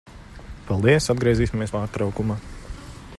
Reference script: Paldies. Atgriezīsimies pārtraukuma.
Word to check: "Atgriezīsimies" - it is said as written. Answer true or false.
true